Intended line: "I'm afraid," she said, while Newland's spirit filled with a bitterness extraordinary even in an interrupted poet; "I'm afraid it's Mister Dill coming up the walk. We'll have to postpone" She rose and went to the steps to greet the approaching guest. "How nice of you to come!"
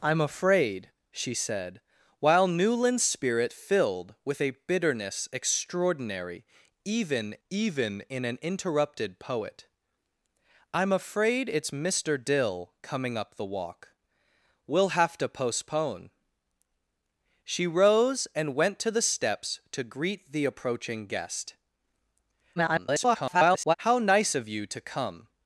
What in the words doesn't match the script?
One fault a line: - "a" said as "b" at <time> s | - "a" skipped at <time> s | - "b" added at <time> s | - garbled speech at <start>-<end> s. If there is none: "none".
- "even" added at 7.5 s
- garbled speech at 22.6-23.7 s